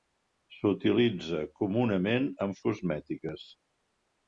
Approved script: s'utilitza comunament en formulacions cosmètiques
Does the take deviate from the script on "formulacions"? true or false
true